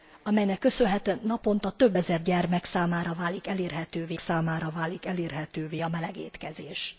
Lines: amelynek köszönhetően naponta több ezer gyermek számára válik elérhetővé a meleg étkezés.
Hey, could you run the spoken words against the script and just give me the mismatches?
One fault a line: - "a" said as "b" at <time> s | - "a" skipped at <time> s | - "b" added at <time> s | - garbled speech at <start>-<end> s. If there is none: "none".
- "számára válik elérhetővé" added at 4.2 s